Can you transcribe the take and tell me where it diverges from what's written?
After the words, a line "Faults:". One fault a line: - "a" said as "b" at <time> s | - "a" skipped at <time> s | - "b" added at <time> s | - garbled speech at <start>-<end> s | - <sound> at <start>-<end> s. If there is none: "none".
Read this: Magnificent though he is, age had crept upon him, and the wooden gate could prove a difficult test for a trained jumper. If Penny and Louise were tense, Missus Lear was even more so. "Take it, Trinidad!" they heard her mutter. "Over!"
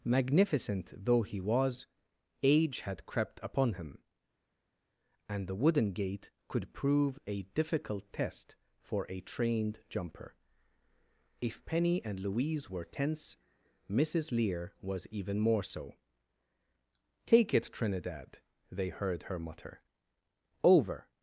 Magnificent though he was, age had crept upon him, and the wooden gate could prove a difficult test for a trained jumper. If Penny and Louise were tense, Missus Lear was even more so. "Take it, Trinidad!" they heard her mutter. "Over!"
Faults:
- "is" said as "was" at 1.4 s